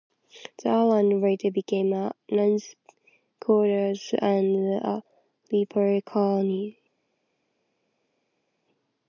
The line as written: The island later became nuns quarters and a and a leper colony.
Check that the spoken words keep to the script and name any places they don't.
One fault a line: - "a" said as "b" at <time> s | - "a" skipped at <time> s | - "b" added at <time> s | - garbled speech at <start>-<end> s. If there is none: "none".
- "a" added at 1.9 s
- "and a" skipped at 5.0 s